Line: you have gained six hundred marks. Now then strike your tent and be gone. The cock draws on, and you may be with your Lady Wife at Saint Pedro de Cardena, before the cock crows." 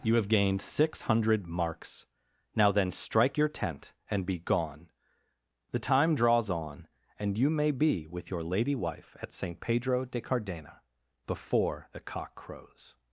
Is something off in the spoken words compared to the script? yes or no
yes